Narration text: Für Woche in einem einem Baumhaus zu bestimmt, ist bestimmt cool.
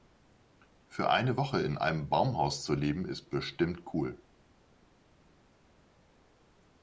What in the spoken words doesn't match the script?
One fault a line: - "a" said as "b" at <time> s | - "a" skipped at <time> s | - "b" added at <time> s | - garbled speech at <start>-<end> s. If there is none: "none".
- "eine" added at 1.1 s
- "einem" skipped at 2.1 s
- "bestimmt" said as "leben" at 2.7 s